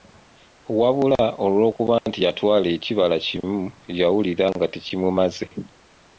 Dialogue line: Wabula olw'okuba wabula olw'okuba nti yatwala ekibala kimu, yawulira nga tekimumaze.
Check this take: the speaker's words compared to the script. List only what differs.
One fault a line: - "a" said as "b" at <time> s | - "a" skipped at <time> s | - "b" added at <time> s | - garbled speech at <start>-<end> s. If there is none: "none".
- "wabula olw'okuba" skipped at 1.9 s